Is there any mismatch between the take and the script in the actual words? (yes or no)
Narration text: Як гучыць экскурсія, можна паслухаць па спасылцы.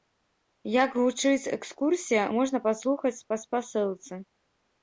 no